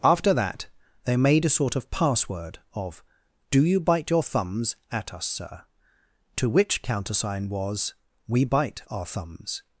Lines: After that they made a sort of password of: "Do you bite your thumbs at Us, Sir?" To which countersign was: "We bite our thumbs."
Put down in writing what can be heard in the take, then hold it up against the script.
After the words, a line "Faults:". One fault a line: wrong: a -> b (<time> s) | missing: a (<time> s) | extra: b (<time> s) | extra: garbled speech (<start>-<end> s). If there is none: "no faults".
After that they made a sort of password of: "Do you bite your thumbs at Us, Sir?" To which countersign was: "We bite our thumbs."
Faults:
no faults